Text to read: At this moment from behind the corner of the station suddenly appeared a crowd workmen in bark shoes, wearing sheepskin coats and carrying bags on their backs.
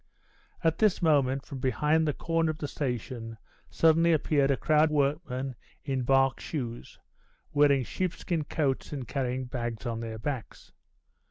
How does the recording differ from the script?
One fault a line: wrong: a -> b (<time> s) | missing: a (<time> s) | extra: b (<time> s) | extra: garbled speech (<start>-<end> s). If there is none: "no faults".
no faults